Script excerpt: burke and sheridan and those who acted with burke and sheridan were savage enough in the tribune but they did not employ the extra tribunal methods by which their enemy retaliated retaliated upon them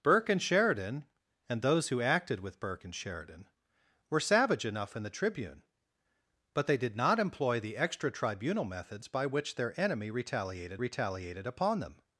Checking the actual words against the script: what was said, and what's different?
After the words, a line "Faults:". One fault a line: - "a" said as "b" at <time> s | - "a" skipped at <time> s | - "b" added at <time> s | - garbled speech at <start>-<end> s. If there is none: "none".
burke and sheridan and those who acted with burke and sheridan were savage enough in the tribune but they did not employ the extra tribunal methods by which their enemy retaliated retaliated upon them
Faults:
none